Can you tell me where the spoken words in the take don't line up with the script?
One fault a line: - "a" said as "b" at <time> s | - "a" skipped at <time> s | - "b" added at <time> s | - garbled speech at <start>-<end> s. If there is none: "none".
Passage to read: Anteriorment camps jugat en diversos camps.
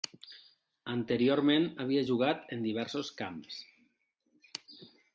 - "camps" said as "havia" at 1.9 s